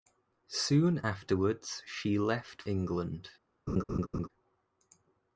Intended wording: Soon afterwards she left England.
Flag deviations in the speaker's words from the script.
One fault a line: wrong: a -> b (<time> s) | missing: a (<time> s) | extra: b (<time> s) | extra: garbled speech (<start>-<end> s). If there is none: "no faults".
no faults